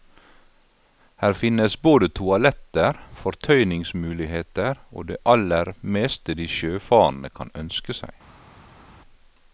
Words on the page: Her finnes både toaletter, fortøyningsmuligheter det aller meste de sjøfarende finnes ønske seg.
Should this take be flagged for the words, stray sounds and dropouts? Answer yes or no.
yes